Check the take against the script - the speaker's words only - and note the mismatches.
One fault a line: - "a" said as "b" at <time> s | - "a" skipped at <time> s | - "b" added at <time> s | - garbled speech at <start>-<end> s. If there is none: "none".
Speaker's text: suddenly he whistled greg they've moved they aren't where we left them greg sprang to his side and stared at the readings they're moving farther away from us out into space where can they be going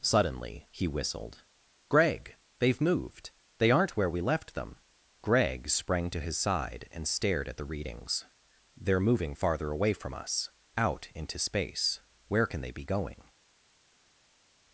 none